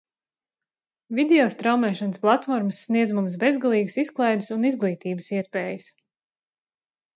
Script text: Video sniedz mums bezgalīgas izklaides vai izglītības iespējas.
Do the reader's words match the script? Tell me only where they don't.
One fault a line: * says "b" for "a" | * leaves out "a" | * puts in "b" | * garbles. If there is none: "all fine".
* puts in "straumēšanas platformas"
* says "un" for "vai"